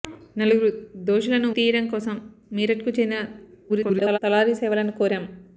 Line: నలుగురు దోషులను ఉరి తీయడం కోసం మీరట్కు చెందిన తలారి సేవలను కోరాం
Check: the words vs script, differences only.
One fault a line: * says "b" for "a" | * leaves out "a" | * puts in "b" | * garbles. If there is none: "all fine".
* leaves out "ఉరి"
* garbles